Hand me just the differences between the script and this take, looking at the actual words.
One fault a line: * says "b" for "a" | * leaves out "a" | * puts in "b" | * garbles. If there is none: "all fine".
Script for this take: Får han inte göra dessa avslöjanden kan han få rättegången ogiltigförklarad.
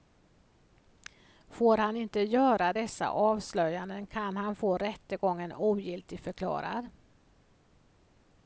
all fine